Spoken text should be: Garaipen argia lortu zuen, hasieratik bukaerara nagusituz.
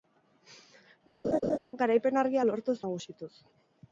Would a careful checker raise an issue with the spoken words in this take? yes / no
yes